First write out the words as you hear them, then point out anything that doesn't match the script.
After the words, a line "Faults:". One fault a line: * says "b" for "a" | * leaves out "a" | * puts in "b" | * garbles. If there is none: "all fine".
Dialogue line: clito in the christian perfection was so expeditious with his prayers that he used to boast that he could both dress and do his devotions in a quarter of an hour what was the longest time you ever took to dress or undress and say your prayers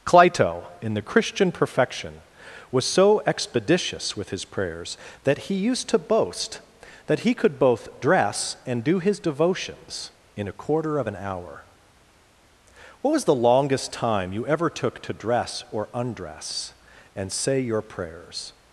clito in the christian perfection was so expeditious with his prayers that he used to boast that he could both dress and do his devotions in a quarter of an hour what was the longest time you ever took to dress or undress and say your prayers
Faults:
all fine